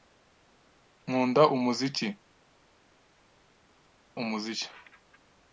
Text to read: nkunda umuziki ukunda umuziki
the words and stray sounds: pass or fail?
fail